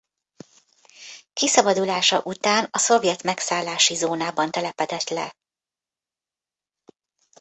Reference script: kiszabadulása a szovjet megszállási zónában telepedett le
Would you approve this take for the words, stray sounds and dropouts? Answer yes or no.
no